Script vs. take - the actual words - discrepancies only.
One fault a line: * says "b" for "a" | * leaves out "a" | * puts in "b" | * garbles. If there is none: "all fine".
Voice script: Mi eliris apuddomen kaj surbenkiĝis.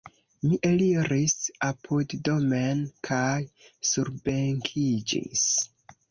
all fine